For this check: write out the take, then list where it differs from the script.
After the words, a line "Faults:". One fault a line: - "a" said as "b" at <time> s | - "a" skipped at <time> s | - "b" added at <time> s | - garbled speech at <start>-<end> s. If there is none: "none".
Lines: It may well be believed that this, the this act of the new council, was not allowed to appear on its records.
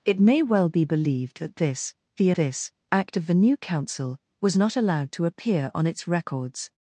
It may well be believed that this, the this act of the new council, was not allowed to appear on its records.
Faults:
none